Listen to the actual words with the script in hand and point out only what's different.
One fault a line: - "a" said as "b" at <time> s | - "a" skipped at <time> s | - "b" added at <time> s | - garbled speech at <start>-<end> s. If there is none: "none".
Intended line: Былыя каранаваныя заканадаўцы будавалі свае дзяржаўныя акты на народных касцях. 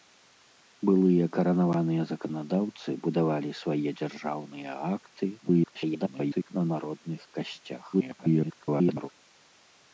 - garbled speech at 5.4-6.5 s
- garbled speech at 7.9-9.1 s